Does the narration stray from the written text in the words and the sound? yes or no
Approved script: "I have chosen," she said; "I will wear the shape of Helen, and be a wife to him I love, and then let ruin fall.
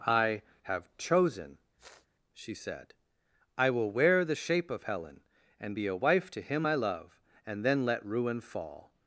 yes